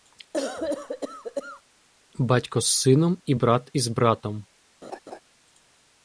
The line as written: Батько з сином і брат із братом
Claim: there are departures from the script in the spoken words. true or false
false